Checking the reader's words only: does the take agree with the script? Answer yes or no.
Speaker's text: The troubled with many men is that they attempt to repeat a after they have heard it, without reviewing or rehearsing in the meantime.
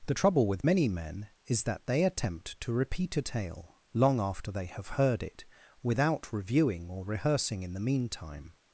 no